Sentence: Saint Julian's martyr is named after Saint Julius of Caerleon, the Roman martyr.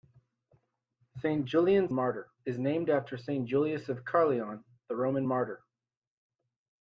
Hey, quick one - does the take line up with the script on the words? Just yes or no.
yes